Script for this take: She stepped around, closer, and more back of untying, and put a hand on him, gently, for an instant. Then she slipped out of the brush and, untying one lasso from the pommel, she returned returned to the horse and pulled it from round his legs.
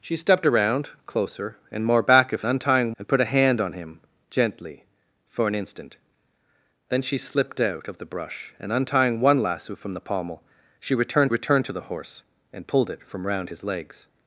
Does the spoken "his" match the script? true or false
true